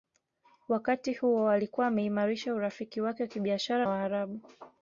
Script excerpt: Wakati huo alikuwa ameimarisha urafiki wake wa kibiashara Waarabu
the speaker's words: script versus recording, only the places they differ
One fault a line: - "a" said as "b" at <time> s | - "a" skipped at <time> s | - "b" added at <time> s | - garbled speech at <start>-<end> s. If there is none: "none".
none